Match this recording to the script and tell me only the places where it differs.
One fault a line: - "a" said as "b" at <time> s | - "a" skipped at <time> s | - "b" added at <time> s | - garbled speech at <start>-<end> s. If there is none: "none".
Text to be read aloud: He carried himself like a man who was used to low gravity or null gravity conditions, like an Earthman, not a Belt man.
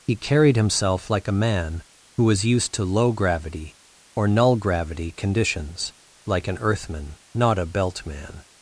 none